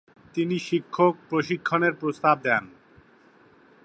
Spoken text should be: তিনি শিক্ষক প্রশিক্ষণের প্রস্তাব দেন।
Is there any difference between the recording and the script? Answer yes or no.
no